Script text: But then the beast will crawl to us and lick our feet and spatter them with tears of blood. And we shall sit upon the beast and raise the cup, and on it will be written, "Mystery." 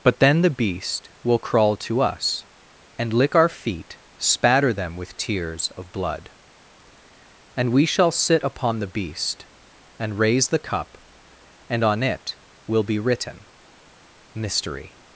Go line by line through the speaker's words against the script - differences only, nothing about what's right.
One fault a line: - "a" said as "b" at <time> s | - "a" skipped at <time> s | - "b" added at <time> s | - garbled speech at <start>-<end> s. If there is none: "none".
- "and" skipped at 4.0 s